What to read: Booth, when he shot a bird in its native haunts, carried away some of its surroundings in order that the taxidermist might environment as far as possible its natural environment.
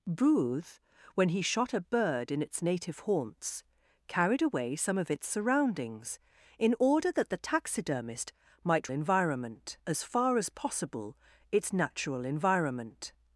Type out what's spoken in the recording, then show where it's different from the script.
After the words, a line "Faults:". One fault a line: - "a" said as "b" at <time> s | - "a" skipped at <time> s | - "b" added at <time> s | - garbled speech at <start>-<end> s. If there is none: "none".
Booth, when he shot a bird in its native haunts, carried away some of its surroundings in order that the taxidermist might environment as far as possible its natural environment.
Faults:
none